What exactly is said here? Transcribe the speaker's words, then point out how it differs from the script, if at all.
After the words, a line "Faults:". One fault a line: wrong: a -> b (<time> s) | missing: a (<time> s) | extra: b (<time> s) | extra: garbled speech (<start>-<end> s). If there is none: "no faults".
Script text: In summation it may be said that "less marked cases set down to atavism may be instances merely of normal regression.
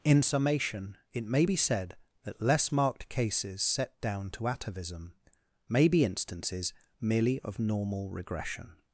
In summation it may be said that "less marked cases set down to atavism may be instances merely of normal regression.
Faults:
no faults